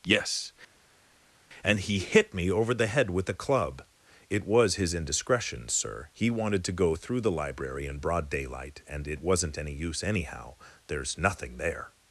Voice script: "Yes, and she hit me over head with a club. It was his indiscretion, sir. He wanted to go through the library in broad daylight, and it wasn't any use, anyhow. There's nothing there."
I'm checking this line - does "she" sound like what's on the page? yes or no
no